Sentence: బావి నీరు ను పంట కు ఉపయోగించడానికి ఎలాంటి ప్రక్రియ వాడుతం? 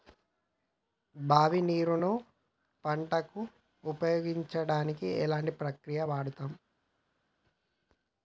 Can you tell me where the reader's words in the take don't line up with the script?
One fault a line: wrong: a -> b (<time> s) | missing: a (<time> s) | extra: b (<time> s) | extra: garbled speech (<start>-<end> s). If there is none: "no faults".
no faults